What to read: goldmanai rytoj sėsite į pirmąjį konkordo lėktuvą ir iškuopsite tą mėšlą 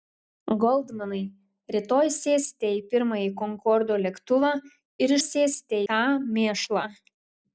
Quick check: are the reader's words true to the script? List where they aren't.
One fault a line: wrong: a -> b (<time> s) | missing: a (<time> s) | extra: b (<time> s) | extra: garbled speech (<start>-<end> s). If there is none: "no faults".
wrong: iškuopsite -> sėsite (5.2 s)